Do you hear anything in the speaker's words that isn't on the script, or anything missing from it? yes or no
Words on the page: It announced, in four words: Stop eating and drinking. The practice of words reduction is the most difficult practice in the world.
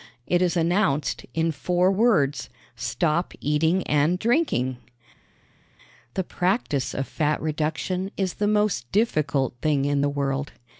yes